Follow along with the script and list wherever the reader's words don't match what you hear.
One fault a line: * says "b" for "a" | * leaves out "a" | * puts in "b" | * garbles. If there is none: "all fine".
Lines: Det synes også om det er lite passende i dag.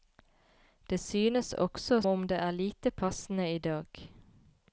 all fine